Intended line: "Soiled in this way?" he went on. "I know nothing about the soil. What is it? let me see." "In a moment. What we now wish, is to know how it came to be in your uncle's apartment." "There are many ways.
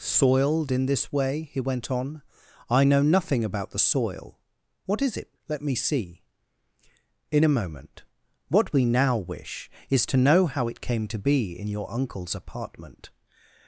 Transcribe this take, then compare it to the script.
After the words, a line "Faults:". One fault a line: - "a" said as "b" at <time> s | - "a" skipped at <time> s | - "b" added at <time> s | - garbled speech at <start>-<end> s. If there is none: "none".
"Soiled in this way?" he went on. "I know nothing about the soil. What is it? let me see." "In a moment. What we now wish, is to know how it came to be in your uncle's apartment.
Faults:
- "There are many ways" skipped at 13.1 s